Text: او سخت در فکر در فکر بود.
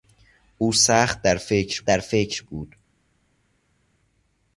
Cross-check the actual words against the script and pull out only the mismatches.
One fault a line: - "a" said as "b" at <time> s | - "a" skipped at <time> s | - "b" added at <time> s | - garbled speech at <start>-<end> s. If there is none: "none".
none